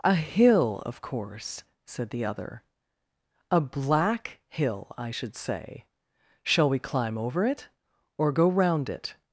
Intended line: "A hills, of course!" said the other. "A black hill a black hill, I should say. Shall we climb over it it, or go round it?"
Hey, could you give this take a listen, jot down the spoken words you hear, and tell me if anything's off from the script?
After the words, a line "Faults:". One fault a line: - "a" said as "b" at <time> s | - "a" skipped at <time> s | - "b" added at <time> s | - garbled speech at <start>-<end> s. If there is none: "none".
"A hill, of course!" said the other. "A black hill, I should say. Shall we climb over it, or go round it?"
Faults:
- "hills" said as "hill" at 0.1 s
- "a black hill" skipped at 4.9 s
- "it" skipped at 7.7 s